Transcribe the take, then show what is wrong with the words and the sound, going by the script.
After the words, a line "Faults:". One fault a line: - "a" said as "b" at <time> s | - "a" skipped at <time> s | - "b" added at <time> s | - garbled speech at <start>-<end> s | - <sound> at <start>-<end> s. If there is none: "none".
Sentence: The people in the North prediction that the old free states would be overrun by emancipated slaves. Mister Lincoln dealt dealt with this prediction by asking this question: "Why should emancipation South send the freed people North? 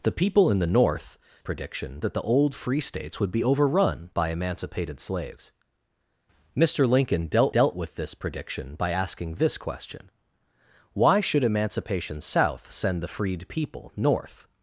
The people in the North prediction that the old free states would be overrun by emancipated slaves. Mister Lincoln dealt dealt with this prediction by asking this question: "Why should emancipation South send the freed people North?
Faults:
none